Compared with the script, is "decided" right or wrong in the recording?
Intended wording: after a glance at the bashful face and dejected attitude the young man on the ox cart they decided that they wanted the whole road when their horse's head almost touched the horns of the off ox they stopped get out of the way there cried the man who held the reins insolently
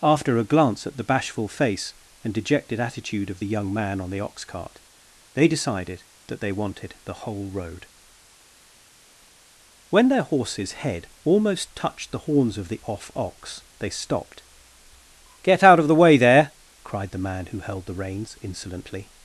right